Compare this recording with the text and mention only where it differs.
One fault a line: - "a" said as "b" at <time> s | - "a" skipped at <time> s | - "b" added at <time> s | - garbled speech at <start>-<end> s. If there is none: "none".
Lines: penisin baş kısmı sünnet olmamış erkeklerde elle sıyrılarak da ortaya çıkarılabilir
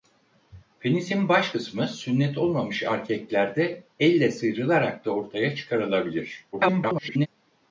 - garbled speech at 6.5-7.3 s